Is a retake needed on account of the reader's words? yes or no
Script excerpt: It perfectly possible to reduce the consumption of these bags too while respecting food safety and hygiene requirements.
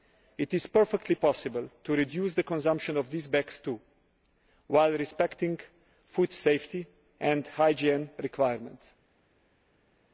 yes